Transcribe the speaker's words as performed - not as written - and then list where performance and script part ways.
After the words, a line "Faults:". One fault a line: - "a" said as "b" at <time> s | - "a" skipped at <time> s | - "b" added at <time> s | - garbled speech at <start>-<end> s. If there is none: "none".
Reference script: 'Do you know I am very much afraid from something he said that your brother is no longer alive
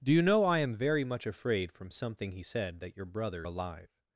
'Do you know I am very much afraid from something he said that your brother alive
Faults:
- "is no longer" skipped at 3.5 s